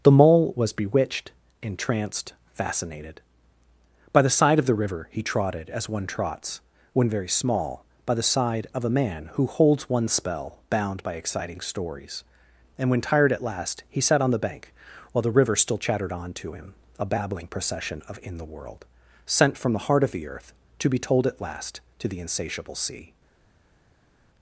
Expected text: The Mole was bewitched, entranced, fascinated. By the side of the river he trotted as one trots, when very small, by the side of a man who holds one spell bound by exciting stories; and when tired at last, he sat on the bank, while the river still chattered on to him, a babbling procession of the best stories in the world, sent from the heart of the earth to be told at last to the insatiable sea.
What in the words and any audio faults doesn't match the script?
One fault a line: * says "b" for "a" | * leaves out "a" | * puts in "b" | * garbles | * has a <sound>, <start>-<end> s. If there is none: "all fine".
* leaves out "the best stories"